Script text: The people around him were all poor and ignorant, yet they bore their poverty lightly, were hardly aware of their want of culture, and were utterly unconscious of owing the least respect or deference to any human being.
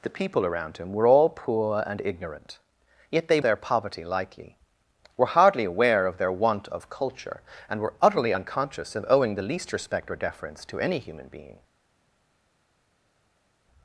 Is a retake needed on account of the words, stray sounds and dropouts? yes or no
yes